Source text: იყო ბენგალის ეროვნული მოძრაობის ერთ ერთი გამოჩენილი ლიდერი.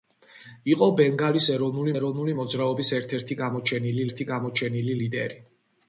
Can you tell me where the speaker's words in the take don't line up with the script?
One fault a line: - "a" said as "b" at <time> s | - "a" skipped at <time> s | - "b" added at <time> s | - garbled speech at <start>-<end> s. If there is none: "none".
- "ეროვნული" added at 2.0 s
- "ერთი გამოჩენილი" added at 4.1 s